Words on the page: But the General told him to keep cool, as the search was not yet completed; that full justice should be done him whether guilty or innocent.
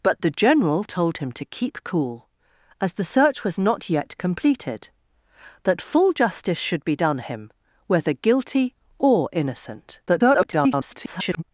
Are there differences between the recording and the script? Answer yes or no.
yes